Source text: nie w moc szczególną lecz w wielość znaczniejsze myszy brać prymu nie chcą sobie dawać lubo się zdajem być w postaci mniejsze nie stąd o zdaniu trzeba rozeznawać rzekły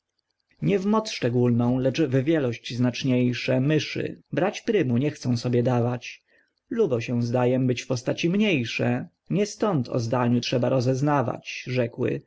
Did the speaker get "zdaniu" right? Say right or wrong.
right